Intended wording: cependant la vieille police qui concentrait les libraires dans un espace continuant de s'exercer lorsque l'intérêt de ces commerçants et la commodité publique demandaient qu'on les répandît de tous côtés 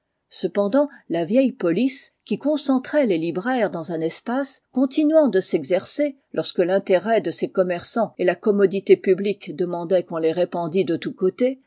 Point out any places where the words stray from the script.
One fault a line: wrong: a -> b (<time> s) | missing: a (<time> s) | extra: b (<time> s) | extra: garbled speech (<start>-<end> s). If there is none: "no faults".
no faults